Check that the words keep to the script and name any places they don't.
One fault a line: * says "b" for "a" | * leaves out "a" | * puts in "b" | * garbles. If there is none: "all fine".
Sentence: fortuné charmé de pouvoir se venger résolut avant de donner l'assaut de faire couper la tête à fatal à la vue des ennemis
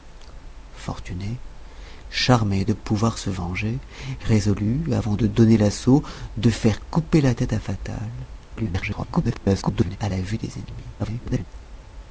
* garbles
* garbles